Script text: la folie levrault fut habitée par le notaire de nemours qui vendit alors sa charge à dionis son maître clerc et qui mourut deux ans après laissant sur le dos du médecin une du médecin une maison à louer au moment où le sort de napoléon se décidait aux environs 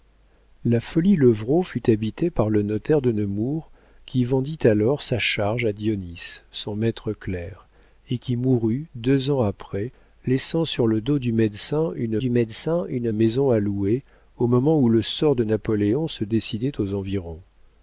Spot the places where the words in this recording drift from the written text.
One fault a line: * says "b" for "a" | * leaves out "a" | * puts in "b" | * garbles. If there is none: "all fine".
all fine